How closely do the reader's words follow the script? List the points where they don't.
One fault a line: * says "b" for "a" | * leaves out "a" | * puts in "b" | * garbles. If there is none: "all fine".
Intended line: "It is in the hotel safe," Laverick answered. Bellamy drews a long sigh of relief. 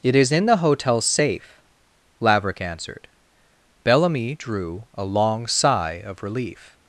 * says "drew" for "drews"